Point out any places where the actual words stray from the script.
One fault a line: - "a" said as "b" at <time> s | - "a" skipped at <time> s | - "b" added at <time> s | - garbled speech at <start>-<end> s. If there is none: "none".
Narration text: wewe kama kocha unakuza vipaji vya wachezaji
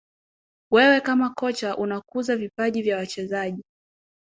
none